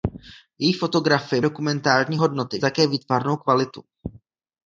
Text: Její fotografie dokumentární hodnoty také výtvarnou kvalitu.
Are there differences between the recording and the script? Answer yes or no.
no